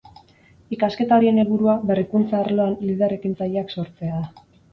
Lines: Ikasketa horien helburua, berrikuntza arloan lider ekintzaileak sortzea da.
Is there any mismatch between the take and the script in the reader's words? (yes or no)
no